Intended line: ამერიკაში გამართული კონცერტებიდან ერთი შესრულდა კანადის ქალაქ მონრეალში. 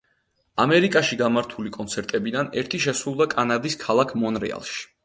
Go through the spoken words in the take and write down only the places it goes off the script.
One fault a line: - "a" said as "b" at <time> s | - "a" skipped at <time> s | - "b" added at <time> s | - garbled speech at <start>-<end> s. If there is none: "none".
none